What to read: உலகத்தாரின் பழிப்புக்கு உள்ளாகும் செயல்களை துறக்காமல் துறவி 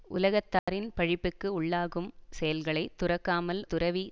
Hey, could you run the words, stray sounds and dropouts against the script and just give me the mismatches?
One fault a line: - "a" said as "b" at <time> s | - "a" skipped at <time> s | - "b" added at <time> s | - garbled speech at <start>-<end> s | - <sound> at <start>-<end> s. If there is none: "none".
- dropout at 0.6-0.7 s